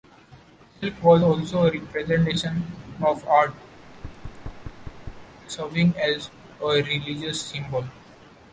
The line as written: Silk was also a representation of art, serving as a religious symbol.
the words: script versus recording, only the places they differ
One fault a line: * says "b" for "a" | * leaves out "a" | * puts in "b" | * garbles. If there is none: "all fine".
all fine